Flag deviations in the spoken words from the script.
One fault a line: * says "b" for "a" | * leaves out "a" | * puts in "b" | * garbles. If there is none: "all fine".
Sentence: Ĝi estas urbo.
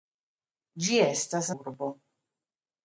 all fine